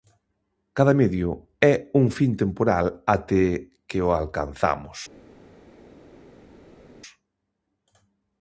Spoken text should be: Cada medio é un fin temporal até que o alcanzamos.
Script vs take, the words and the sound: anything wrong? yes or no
no